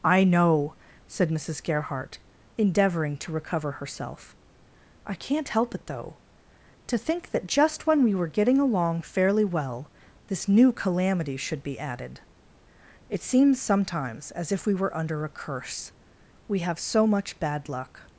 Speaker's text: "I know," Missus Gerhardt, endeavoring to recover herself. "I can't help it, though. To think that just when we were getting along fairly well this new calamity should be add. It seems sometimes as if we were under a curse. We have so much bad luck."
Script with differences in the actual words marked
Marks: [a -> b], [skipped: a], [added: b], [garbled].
"I know," [added: said] Missus Gerhardt, endeavoring to recover herself. "I can't help it, though. To think that just when we were getting along fairly well this new calamity should be [add. -> added] It seems sometimes as if we were under a curse. We have so much bad luck."